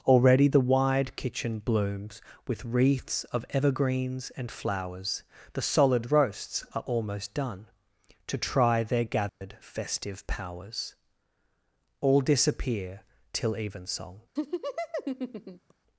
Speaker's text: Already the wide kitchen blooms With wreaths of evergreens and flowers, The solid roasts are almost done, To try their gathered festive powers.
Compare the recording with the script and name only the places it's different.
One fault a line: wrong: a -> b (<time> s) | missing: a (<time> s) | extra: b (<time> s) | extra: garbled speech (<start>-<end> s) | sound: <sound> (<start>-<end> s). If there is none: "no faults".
sound: dropout (9.3-9.4 s)
extra: All disappear till evensong (12.0 s)
sound: laugh (14.4-15.7 s)